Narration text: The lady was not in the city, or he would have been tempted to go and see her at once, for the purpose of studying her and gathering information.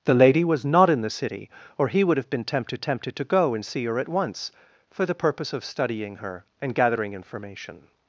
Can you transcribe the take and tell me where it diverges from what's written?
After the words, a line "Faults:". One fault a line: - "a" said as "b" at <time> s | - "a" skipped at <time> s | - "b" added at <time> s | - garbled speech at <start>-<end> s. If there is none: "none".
The lady was not in the city, or he would have been tempted tempted to go and see her at once, for the purpose of studying her and gathering information.
Faults:
- "tempted" added at 2.8 s